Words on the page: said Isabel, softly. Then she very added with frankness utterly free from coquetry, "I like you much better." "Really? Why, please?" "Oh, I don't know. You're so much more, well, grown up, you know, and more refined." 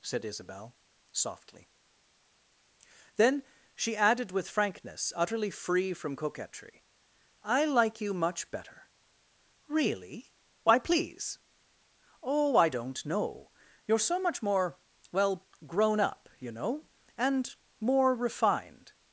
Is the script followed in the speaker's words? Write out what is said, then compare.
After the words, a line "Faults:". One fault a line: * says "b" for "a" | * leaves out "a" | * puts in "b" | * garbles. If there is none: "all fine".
said Isabel, softly. Then she added with frankness utterly free from coquetry, "I like you much better." "Really? Why, please?" "Oh, I don't know. You're so much more, well, grown up, you know, and more refined."
Faults:
* leaves out "very"